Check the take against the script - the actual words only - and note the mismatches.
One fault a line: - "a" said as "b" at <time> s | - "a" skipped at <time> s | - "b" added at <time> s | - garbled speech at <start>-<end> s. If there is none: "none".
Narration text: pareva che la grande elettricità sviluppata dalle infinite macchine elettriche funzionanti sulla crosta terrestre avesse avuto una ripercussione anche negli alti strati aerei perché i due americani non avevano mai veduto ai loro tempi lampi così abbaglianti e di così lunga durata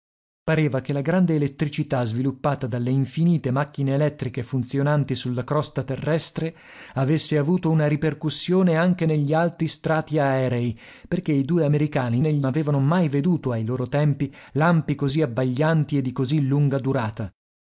- "non" said as "negli" at 12.2 s